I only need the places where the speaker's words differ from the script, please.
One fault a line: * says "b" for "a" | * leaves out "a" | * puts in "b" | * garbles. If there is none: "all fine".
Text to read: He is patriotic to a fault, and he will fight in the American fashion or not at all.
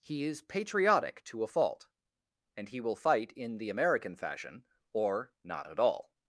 all fine